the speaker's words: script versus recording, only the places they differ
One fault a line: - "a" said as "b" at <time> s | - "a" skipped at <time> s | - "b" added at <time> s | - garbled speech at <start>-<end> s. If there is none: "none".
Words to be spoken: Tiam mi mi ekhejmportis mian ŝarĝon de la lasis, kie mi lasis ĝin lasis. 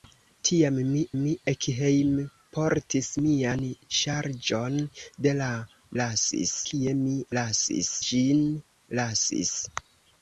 none